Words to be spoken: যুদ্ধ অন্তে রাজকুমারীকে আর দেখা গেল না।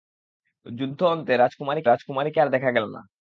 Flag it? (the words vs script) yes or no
yes